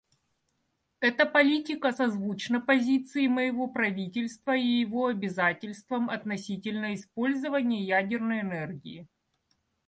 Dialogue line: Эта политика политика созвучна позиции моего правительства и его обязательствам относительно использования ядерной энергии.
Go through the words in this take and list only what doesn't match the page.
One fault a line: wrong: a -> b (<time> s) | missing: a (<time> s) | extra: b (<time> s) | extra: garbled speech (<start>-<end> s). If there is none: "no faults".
missing: политика (1.9 s)